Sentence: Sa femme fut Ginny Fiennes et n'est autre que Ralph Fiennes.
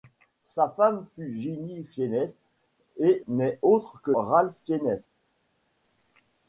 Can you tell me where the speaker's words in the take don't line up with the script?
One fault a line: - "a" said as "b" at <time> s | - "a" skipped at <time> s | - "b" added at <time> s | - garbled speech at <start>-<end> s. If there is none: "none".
none